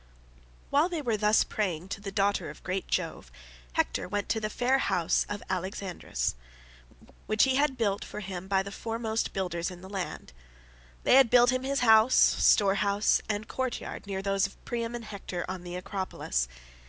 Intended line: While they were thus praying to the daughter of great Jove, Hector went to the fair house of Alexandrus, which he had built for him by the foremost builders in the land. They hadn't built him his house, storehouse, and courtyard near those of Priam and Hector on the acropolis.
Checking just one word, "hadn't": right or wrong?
wrong